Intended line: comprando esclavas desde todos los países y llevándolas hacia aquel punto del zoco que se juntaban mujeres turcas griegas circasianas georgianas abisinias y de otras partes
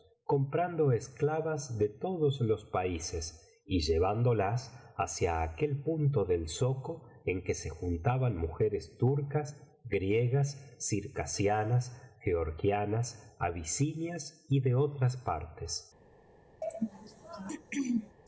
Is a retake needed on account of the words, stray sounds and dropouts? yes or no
yes